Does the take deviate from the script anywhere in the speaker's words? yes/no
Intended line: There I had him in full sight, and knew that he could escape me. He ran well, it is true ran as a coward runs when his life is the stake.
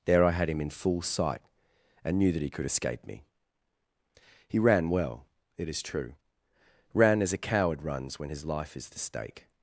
no